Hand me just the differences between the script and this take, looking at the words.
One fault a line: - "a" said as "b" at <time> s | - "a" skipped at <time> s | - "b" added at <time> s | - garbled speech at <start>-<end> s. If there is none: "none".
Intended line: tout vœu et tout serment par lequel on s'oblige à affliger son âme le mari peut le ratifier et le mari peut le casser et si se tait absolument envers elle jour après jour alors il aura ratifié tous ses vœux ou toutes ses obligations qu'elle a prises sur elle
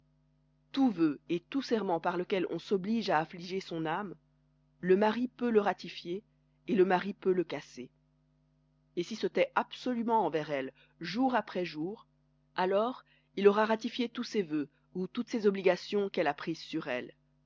none